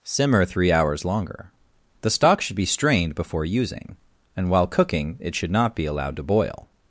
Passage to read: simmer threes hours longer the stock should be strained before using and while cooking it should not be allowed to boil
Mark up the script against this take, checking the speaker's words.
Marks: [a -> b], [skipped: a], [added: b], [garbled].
simmer [threes -> three] hours longer the stock should be strained before using and while cooking it should not be allowed to boil